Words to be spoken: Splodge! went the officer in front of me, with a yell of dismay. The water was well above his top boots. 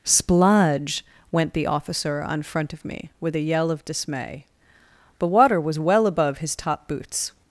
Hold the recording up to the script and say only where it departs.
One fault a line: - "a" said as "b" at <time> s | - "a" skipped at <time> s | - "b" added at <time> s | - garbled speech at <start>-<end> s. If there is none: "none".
- "in" said as "on" at 2.2 s